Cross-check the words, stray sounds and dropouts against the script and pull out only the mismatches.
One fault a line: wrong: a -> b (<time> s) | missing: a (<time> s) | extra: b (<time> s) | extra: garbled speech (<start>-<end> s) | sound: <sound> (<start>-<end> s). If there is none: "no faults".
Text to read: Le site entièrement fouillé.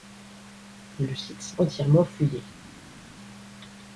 no faults